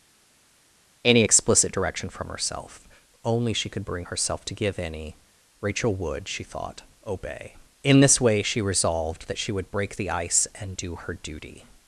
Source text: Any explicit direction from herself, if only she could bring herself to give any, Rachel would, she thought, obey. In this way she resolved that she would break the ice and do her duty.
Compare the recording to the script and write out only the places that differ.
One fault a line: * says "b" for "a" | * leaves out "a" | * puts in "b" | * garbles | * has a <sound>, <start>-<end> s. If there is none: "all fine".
* leaves out "if"